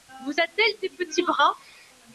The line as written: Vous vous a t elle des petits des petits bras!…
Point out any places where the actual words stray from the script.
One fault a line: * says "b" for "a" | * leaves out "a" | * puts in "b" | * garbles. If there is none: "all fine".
* leaves out "vous"
* leaves out "des petits"